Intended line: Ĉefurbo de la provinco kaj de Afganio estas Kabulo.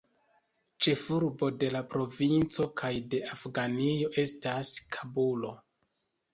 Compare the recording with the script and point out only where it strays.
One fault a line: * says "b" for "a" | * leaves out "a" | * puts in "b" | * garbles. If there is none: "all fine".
all fine